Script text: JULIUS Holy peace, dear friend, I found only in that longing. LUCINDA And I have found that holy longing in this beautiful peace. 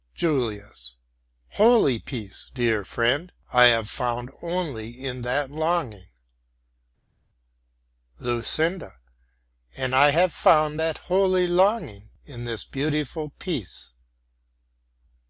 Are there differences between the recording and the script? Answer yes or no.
yes